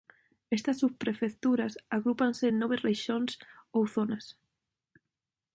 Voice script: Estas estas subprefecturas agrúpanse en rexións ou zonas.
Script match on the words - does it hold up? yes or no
no